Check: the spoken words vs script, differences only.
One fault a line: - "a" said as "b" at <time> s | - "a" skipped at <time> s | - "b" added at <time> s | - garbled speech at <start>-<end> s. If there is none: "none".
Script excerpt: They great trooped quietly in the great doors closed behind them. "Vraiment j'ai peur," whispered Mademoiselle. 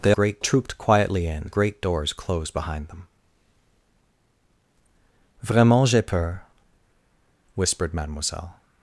none